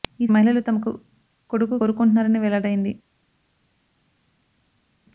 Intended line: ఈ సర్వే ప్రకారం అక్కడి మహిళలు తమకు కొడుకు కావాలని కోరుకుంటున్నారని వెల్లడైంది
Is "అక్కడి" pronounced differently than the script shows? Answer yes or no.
yes